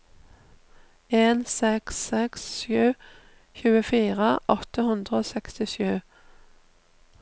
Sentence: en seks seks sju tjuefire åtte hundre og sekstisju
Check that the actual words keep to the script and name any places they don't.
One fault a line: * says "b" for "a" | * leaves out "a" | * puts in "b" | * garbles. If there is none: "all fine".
all fine